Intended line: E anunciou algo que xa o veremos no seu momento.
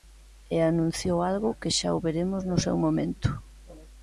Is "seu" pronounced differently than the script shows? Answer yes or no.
no